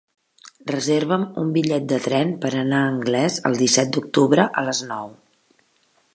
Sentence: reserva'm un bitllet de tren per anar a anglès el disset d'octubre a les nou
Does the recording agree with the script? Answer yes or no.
yes